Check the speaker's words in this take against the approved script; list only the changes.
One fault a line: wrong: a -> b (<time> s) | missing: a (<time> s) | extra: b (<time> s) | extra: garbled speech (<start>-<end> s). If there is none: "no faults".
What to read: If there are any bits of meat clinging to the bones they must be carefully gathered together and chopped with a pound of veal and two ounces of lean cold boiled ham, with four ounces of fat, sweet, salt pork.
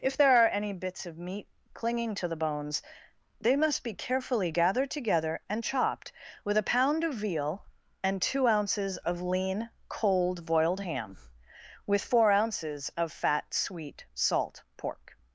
no faults